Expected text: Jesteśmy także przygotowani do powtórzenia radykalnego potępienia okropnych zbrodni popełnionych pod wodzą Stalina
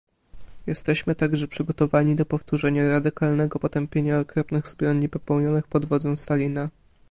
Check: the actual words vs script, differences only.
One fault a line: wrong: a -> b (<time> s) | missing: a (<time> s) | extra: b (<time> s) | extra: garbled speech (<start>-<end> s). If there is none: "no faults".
no faults